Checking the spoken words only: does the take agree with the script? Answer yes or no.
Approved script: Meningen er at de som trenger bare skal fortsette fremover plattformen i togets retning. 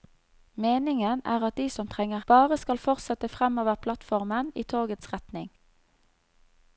yes